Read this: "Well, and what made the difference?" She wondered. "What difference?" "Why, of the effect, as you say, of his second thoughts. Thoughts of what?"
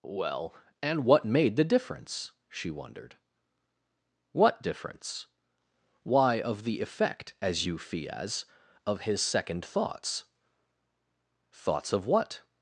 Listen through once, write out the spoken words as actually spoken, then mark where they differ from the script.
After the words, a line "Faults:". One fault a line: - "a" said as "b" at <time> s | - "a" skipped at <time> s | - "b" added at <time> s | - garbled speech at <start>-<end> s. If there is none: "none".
"Well, and what made the difference?" She wondered. "What difference?" "Why, of the effect, as you fias, of his second thoughts. Thoughts of what?"
Faults:
- "say" said as "fias" at 7.8 s